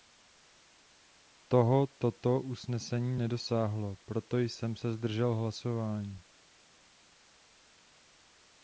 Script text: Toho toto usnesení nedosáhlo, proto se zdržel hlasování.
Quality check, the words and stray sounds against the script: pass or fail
fail